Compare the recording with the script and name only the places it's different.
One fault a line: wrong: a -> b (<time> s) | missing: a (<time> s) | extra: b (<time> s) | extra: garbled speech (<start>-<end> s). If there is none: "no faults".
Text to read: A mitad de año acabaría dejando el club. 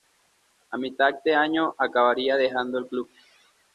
no faults